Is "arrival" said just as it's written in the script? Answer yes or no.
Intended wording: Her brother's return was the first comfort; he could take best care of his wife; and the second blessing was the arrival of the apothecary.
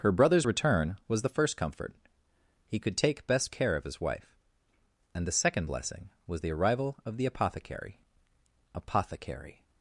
yes